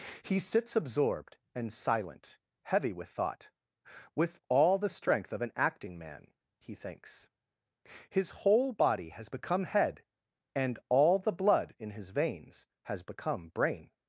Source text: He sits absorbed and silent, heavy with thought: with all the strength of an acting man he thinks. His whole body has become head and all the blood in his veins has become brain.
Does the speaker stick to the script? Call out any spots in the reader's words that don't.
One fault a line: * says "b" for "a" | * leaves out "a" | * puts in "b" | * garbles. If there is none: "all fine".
all fine